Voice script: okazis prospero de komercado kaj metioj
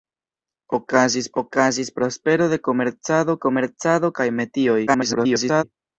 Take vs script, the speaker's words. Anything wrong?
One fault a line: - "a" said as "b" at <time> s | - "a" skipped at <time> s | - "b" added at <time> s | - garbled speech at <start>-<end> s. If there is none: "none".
- "okazis" added at 1.4 s
- "komercado" added at 3.5 s
- garbled speech at 4.9-5.6 s